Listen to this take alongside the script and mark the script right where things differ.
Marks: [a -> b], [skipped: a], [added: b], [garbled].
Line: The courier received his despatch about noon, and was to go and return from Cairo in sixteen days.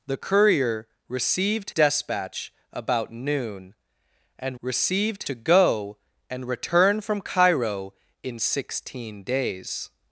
The courier received [skipped: his] despatch about noon, and [was -> received] to go and return from Cairo in sixteen days.